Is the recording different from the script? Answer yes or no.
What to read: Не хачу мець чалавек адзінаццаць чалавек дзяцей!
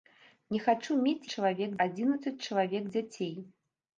no